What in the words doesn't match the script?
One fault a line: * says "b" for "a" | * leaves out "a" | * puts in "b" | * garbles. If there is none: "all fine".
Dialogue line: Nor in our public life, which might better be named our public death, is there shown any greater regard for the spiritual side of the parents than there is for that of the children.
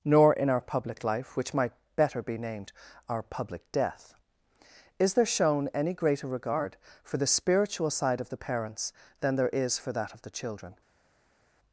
all fine